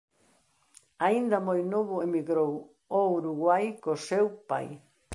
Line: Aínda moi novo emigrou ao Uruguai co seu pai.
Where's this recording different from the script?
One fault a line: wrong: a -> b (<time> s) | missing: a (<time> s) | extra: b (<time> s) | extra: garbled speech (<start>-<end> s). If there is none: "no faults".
no faults